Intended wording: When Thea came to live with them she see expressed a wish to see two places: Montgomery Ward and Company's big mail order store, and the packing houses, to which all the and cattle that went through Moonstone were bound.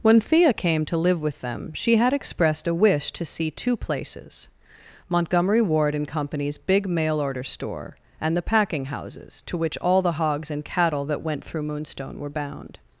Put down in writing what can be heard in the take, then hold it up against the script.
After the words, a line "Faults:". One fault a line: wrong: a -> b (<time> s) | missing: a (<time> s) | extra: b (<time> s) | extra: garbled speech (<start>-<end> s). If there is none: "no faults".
When Thea came to live with them she had expressed a wish to see two places: Montgomery Ward and Company's big mail order store, and the packing houses, to which all the hogs and cattle that went through Moonstone were bound.
Faults:
wrong: see -> had (2.0 s)
extra: hogs (10.1 s)